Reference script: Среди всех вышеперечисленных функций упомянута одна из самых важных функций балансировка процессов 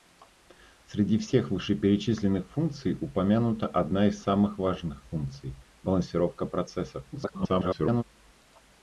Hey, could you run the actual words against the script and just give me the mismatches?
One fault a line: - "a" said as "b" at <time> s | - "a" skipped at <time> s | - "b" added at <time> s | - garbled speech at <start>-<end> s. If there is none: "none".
- garbled speech at 7.1-8.0 s